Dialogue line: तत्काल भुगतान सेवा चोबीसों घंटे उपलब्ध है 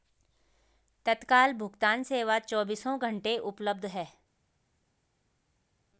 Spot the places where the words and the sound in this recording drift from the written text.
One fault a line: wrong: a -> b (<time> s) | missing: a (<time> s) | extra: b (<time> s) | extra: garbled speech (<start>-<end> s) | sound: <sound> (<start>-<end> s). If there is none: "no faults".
no faults